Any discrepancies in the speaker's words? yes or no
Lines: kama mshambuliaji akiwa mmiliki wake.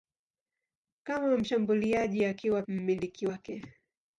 no